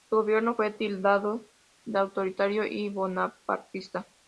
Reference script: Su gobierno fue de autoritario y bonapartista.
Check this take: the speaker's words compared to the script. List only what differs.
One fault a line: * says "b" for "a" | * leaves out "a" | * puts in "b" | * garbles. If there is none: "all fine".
* puts in "tildado"